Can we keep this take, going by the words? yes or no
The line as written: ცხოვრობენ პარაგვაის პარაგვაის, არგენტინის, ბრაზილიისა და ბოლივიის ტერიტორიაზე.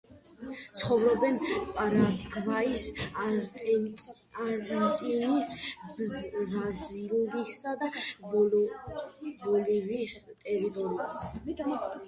no